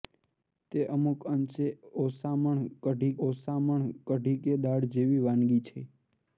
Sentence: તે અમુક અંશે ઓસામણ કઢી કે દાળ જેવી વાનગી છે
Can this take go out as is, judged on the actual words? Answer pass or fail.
fail